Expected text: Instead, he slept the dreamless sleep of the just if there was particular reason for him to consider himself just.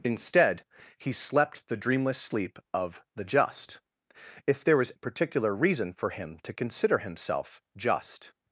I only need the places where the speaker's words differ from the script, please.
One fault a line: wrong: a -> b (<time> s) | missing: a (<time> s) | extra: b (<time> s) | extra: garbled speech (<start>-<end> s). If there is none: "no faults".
no faults